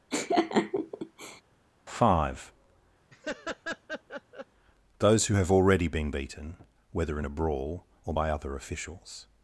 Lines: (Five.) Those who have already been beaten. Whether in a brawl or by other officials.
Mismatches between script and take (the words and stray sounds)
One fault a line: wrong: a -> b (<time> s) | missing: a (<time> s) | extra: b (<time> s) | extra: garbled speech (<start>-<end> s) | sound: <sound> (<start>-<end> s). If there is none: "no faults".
sound: laugh (0.1-1.4 s)
sound: laugh (3.1-4.5 s)